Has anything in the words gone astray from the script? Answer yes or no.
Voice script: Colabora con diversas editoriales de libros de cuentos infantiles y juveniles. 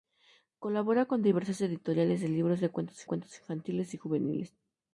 yes